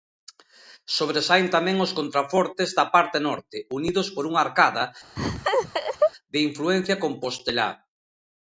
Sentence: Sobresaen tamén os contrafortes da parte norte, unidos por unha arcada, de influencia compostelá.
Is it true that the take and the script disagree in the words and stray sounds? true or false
true